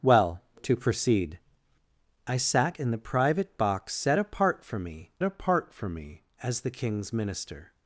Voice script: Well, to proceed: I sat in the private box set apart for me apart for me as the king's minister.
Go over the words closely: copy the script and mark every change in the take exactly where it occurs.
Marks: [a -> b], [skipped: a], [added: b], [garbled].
Well, to proceed: I sat in the private box set apart for me apart for me as the king's minister.